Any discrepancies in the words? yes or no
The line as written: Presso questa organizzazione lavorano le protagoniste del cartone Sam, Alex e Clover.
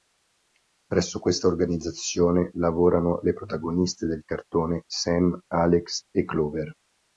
no